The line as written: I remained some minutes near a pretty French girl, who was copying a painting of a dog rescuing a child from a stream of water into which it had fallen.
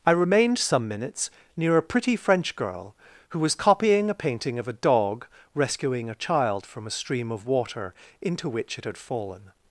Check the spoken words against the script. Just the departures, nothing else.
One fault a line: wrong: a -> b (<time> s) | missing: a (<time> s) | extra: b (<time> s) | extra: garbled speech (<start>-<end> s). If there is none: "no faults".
no faults